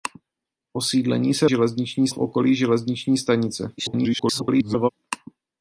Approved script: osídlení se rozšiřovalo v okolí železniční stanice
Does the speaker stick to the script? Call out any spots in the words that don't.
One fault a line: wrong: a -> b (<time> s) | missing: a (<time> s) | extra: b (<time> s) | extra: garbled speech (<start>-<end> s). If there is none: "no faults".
wrong: rozšiřovalo -> železniční (1.4 s)
extra: garbled speech (3.8-4.9 s)